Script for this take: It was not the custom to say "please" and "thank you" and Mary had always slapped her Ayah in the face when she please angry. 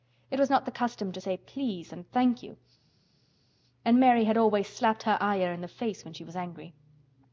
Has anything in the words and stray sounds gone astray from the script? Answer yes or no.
yes